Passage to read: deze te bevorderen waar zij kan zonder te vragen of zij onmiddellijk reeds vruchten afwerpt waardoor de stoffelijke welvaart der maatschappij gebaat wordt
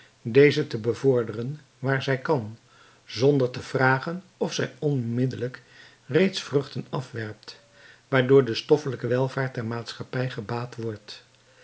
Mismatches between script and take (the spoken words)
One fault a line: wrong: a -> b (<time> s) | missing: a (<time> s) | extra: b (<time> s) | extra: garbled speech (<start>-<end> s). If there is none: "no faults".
no faults